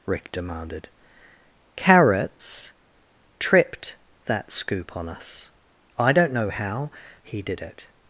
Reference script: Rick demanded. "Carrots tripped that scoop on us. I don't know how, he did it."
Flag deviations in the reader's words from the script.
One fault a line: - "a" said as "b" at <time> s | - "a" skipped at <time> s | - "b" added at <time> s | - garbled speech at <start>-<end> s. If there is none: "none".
none